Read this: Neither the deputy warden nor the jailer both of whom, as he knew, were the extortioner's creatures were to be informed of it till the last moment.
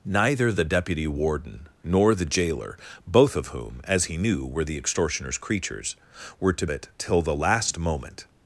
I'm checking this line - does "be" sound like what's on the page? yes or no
no